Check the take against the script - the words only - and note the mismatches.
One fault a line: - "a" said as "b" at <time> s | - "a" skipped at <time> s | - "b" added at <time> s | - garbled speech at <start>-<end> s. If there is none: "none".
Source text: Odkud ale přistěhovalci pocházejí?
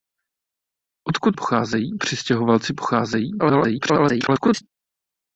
- "ale" said as "pocházejí" at 1.3 s
- garbled speech at 3.4-4.6 s